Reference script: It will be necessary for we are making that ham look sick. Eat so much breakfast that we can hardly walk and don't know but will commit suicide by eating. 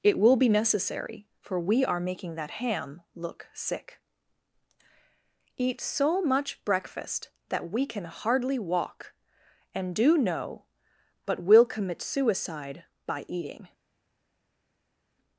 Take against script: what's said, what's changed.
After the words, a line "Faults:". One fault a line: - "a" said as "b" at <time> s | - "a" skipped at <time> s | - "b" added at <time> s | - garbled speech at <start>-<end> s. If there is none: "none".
It will be necessary for we are making that ham look sick. Eat so much breakfast that we can hardly walk and do know but will commit suicide by eating.
Faults:
- "don't" said as "do" at 9.9 s